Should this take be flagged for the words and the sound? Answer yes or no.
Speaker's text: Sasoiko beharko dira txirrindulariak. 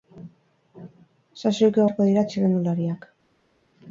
no